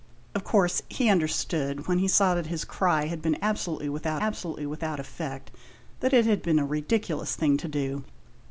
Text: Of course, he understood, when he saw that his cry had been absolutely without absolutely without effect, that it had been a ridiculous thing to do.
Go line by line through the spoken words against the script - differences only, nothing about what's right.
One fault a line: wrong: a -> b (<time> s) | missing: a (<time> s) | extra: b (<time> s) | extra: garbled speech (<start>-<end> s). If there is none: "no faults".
no faults